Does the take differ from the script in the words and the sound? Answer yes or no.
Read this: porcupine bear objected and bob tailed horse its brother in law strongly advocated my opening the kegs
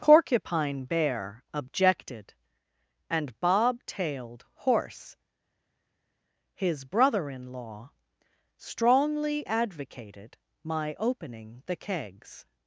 yes